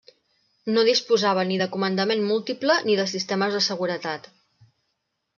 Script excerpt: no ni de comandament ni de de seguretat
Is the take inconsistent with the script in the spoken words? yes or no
yes